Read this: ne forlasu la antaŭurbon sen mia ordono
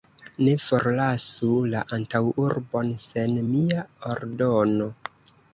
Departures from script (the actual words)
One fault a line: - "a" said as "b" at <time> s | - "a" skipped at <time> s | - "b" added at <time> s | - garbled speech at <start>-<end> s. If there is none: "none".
none